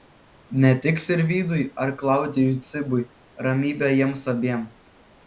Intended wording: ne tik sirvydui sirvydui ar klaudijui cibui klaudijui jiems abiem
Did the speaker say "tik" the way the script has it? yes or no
yes